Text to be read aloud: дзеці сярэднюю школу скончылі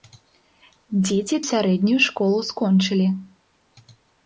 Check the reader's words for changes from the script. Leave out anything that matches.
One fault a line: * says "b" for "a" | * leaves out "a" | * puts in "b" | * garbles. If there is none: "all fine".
all fine